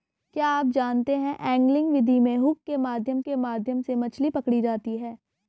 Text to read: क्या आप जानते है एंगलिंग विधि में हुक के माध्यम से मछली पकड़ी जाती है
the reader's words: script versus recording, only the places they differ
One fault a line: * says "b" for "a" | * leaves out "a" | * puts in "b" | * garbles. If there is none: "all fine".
* puts in "के माध्यम"